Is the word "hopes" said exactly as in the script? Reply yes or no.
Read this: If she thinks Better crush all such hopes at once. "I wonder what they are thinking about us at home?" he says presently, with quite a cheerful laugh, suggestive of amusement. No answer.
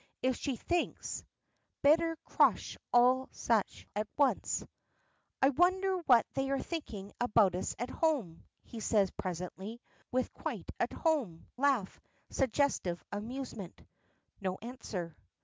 no